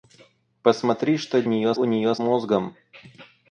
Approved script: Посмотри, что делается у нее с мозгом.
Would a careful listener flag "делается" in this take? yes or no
yes